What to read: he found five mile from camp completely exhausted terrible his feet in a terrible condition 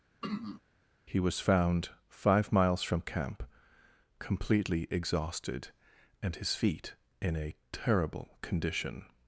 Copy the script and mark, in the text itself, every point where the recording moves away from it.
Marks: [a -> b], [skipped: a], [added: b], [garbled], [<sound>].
[throat clearing] he [added: was] found five [mile -> miles] from camp completely exhausted [terrible -> and] his feet in a terrible condition